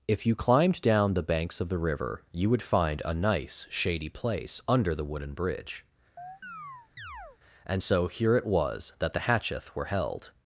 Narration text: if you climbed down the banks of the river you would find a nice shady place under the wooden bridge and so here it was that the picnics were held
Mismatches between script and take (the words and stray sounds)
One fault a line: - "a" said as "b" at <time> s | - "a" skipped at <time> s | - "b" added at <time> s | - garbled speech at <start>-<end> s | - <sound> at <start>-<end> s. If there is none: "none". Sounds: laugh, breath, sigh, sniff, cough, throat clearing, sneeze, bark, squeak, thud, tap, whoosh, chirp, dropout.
- chirp at 6.2-7.4 s
- "picnics" said as "hatcheth" at 9.2 s